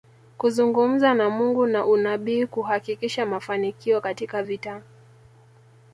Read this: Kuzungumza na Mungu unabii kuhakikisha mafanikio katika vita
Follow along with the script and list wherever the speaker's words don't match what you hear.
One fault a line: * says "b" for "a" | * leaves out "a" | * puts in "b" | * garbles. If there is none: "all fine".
* puts in "na"